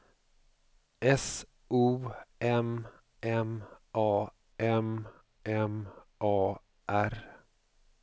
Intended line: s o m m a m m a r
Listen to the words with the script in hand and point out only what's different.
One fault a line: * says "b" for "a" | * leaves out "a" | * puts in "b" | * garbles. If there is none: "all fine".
all fine